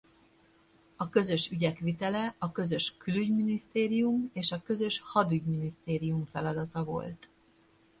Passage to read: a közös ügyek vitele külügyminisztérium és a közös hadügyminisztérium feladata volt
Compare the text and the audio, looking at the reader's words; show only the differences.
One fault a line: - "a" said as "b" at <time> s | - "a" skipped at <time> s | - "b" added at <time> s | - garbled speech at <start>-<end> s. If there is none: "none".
- "a közös" added at 2.4 s